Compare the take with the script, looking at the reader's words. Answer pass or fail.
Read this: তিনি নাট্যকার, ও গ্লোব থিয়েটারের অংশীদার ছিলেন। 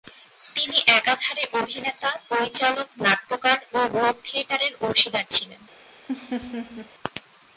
fail